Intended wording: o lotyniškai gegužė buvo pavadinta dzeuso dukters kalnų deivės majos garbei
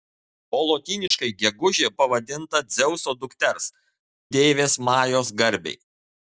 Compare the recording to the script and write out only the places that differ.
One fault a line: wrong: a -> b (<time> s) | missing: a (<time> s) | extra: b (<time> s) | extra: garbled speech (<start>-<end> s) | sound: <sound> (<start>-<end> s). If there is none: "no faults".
sound: dropout (1.1-1.1 s)
missing: buvo (1.9 s)
missing: kalnų (3.7 s)